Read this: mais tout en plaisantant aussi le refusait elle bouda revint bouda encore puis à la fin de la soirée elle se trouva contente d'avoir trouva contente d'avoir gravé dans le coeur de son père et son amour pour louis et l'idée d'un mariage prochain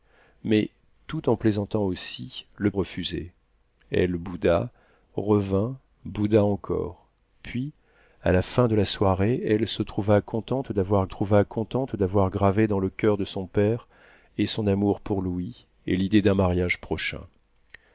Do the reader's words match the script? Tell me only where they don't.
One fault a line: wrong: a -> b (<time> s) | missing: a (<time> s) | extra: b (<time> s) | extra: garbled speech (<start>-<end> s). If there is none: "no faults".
no faults